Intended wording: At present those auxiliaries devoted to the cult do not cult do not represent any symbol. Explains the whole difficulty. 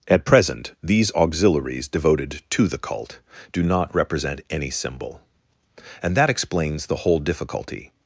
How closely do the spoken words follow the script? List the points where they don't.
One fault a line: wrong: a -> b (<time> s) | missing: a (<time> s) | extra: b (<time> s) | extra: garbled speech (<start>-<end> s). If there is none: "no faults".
wrong: those -> these (0.8 s)
missing: cult do not (3.9 s)
extra: And that (6.0 s)